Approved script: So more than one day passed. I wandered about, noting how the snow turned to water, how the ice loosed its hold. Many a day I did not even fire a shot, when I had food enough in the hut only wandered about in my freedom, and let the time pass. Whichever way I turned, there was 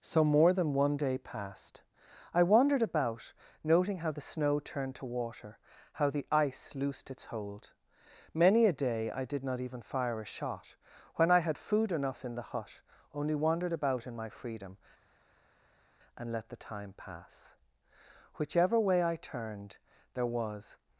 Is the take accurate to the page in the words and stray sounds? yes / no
yes